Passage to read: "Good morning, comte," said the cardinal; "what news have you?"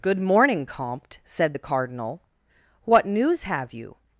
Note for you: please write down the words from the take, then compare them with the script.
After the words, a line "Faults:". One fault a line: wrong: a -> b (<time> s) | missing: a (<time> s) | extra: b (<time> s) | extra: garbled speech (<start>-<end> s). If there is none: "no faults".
"Good morning, comte," said the cardinal; "what news have you?"
Faults:
no faults